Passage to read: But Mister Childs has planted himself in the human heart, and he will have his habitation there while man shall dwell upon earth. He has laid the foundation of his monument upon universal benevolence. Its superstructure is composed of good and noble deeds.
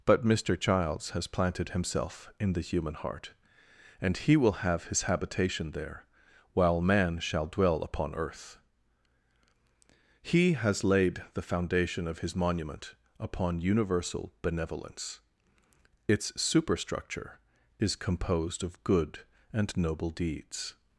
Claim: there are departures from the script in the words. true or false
false